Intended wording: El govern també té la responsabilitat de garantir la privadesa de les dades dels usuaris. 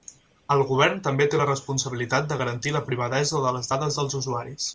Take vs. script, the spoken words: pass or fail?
pass